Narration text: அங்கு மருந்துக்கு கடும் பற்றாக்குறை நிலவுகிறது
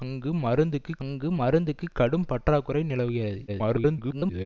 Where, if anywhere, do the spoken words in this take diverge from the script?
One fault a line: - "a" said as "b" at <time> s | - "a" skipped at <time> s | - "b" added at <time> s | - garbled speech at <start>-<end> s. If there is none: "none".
- "அங்கு மருந்துக்கு" added at 1.0 s
- garbled speech at 3.5-4.5 s